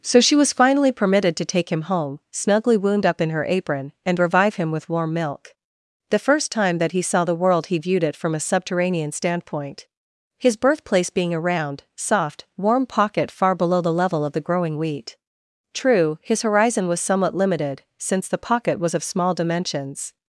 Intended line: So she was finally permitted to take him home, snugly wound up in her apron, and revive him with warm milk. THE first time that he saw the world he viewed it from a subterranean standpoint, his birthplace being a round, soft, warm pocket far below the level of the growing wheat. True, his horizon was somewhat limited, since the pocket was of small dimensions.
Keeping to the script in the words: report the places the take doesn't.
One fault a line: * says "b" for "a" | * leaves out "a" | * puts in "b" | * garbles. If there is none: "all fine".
all fine